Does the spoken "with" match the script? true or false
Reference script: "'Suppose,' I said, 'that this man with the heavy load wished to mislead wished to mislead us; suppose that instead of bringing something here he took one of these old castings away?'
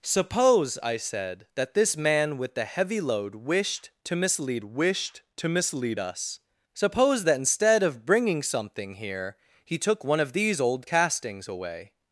true